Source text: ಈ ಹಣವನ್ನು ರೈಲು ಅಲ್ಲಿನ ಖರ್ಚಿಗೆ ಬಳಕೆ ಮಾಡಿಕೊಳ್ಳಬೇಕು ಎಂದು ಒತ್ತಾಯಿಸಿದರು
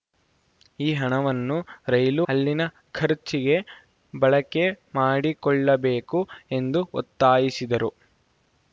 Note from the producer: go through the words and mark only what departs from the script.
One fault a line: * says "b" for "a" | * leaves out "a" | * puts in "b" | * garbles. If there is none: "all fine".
all fine